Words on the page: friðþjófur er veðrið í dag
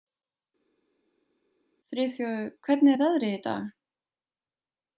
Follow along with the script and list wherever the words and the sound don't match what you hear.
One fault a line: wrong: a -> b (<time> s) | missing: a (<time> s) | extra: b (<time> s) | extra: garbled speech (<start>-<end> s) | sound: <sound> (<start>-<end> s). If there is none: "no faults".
extra: hvernig (2.7 s)